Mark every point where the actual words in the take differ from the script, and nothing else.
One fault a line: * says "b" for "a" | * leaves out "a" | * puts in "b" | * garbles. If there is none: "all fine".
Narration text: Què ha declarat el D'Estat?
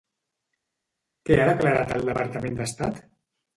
* puts in "Departament"